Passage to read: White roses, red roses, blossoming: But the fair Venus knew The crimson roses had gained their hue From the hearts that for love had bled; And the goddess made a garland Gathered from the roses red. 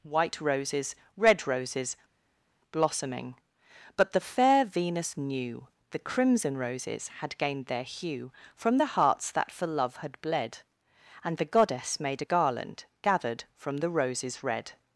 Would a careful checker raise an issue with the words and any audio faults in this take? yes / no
no